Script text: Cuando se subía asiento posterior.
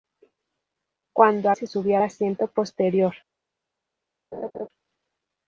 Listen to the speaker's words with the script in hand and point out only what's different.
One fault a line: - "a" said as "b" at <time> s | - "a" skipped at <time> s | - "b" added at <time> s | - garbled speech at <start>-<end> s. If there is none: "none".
none